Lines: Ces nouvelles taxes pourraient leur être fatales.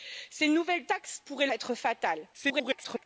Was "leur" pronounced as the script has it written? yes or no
no